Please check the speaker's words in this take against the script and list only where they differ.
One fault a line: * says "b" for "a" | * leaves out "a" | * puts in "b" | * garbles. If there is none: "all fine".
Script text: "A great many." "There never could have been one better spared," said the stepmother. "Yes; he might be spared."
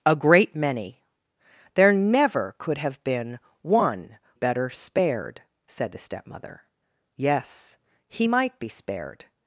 all fine